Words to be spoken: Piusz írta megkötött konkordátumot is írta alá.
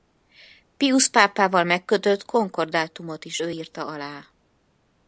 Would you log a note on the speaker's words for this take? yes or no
yes